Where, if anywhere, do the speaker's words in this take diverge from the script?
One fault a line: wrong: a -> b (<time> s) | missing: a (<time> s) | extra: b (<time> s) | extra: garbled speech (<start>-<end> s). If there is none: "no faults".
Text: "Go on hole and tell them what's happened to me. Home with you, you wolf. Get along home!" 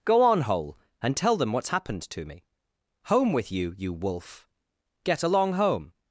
no faults